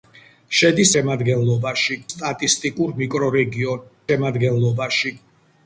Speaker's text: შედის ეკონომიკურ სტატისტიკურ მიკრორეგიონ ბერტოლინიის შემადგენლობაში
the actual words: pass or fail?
fail